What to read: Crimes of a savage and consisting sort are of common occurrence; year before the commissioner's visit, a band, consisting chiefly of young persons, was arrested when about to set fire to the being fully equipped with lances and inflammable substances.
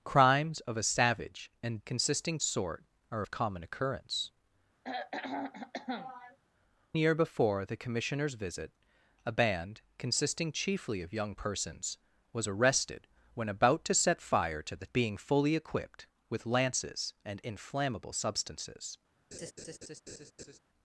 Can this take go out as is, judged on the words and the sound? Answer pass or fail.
fail